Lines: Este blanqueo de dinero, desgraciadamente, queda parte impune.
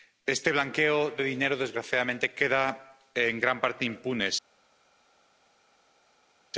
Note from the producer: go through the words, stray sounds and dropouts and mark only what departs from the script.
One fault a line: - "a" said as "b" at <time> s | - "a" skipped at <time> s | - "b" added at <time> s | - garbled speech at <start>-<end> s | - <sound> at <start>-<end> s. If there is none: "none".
- "en gran" added at 3.1 s